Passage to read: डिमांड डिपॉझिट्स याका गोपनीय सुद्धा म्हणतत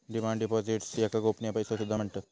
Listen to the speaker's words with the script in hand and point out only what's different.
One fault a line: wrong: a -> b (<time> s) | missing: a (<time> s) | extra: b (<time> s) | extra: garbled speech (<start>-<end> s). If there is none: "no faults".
extra: पैसो (1.5 s)